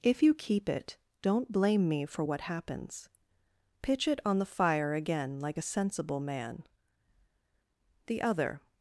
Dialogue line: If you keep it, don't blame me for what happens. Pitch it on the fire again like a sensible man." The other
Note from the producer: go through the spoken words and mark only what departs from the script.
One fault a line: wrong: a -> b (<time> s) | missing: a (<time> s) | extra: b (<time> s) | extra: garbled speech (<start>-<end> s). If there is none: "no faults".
no faults